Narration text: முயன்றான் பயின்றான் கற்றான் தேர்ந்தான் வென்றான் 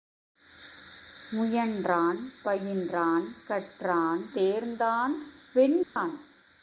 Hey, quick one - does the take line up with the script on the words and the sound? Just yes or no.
no